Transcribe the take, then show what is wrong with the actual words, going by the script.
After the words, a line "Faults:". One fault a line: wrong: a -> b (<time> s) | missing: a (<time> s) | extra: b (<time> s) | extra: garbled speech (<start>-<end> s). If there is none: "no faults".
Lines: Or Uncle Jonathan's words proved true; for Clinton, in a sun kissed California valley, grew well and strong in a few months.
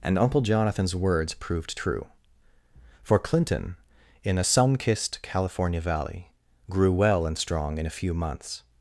And Uncle Jonathan's words proved true; for Clinton, in a sun kissed California valley, grew well and strong in a few months.
Faults:
wrong: Or -> And (0.0 s)